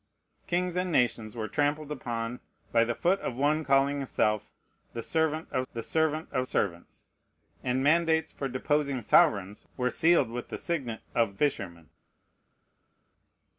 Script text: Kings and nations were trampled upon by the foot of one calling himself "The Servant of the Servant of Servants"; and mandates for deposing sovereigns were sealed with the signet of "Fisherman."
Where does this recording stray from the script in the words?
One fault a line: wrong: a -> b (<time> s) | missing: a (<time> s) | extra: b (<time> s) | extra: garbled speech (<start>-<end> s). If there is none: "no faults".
no faults